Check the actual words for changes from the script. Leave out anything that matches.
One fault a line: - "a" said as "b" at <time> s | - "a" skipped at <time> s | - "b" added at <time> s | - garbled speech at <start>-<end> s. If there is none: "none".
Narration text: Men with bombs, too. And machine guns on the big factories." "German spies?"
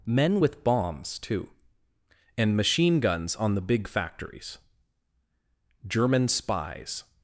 none